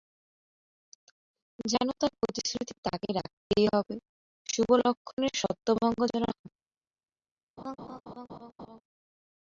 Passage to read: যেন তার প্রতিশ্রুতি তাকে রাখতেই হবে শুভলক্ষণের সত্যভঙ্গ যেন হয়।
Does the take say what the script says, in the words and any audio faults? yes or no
no